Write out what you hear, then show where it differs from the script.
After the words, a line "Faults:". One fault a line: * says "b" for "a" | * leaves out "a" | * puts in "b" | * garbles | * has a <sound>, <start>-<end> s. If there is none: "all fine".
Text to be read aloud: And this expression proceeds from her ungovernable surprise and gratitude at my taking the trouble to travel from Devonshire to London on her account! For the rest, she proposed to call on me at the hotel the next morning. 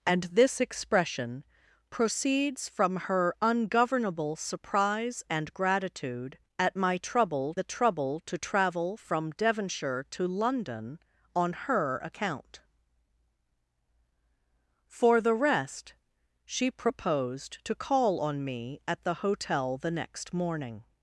And this expression proceeds from her ungovernable surprise and gratitude at my trouble the trouble to travel from Devonshire to London on her account! For the rest, she proposed to call on me at the hotel the next morning.
Faults:
* says "trouble" for "taking"